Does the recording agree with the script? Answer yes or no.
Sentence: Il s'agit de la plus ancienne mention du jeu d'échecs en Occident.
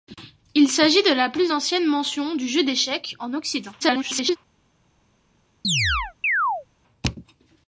no